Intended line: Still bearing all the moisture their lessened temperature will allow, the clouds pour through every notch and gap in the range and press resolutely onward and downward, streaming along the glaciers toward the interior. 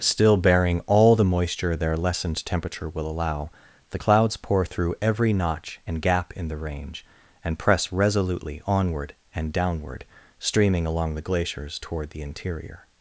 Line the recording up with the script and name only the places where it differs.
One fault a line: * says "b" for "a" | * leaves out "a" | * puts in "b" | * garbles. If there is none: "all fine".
all fine